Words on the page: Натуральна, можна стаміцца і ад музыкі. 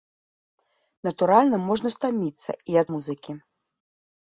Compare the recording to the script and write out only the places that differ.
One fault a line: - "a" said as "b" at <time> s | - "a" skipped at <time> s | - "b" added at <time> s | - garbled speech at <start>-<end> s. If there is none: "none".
none